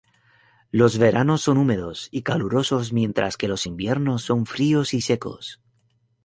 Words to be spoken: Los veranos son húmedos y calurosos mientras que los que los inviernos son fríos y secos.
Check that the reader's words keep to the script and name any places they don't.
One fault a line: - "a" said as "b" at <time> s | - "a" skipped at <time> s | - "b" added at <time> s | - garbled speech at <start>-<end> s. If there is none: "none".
- "que los" skipped at 3.7 s